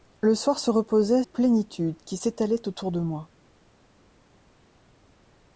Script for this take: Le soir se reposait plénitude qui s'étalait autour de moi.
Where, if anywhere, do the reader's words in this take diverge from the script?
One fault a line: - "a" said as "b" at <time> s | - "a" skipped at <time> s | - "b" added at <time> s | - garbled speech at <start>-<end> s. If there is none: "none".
none